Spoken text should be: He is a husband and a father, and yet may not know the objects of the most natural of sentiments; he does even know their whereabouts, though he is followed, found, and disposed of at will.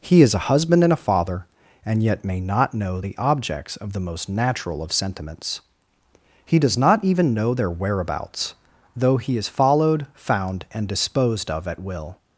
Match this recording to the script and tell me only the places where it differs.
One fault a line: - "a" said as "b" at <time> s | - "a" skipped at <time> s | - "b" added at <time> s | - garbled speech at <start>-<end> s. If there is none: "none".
- "not" added at 6.8 s